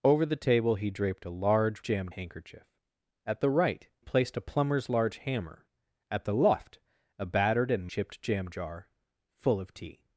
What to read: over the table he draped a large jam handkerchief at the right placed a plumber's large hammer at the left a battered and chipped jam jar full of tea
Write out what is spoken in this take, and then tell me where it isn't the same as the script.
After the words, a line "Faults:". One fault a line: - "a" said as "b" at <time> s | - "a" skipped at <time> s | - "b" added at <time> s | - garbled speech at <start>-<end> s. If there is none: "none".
over the table he draped a large jam handkerchief at the right placed a plumber's large hammer at the left a battered and chipped jam jar full of tea
Faults:
none